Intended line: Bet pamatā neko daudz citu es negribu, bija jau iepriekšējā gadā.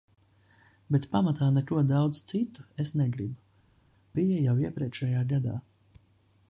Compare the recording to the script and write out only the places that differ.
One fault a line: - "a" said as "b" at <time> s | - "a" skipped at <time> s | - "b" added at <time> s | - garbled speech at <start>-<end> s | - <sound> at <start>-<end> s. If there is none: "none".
none